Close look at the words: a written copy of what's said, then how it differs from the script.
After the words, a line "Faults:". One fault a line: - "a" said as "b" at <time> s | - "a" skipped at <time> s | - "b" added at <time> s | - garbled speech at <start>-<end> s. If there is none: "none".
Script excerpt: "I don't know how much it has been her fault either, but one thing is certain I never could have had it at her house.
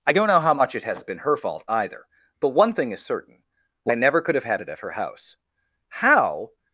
"I don't know how much it has been her fault either, but one thing is certain I never could have had it at her house. How
Faults:
- "How" added at 5.9 s